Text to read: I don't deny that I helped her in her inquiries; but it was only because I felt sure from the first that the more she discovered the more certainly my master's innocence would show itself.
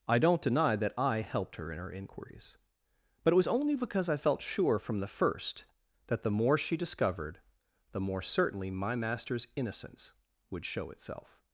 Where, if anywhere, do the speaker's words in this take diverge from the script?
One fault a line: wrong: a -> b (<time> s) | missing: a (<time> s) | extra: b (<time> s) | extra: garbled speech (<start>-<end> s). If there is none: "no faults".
no faults